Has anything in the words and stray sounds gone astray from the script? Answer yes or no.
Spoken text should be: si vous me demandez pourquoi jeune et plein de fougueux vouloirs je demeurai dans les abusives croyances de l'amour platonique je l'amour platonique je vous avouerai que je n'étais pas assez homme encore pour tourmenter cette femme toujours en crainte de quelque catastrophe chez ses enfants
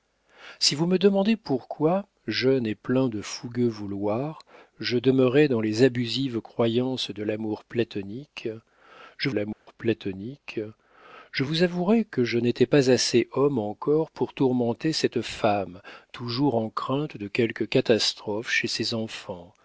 yes